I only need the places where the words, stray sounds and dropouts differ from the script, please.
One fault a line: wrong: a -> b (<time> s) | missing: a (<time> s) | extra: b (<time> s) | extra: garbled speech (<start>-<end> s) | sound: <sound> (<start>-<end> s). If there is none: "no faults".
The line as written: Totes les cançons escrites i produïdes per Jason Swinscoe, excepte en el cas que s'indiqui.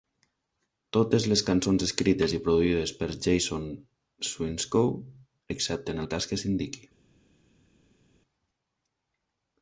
no faults